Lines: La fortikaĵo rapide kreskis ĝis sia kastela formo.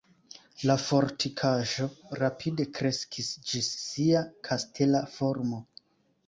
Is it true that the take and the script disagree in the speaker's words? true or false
false